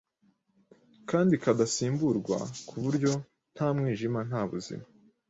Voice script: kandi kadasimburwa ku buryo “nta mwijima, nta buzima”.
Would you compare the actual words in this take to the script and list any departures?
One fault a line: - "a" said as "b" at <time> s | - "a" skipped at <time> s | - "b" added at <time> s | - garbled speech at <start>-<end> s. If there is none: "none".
none